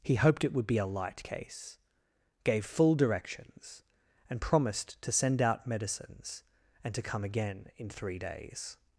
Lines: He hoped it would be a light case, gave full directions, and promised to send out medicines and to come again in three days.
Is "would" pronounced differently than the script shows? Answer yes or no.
no